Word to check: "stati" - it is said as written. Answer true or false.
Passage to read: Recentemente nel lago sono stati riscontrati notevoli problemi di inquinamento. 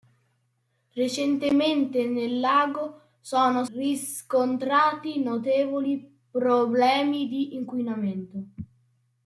false